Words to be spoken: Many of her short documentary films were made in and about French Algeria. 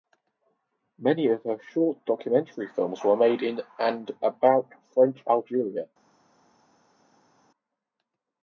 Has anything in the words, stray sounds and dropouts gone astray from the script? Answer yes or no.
no